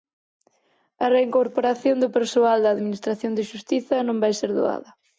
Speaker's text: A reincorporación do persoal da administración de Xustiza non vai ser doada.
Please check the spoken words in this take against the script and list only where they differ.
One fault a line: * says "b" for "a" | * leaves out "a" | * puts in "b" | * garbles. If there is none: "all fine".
all fine